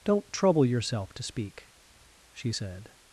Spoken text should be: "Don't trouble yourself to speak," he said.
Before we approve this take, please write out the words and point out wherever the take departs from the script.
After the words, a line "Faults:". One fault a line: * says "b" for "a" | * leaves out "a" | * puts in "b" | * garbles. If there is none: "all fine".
"Don't trouble yourself to speak," she said.
Faults:
* says "she" for "he"